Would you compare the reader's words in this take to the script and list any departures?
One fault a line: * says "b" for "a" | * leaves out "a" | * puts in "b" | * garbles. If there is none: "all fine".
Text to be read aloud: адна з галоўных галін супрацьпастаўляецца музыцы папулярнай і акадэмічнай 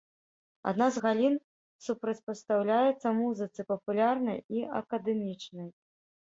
* leaves out "галоўных"